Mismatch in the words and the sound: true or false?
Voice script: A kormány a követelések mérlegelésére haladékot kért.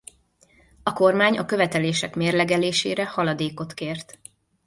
false